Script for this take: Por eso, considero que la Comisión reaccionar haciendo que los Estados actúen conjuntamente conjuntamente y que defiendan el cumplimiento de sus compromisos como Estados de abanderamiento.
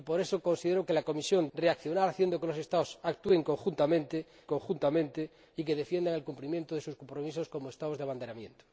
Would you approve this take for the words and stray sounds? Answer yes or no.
yes